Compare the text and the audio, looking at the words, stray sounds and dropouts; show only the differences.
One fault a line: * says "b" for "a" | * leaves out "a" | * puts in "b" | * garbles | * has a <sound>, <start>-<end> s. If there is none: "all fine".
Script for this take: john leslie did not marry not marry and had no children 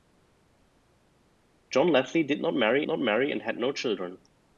all fine